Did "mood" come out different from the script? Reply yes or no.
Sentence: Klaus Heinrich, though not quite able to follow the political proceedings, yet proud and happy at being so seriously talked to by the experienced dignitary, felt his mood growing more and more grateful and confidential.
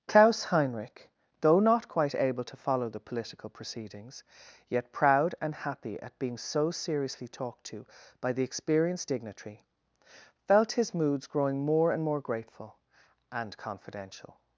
yes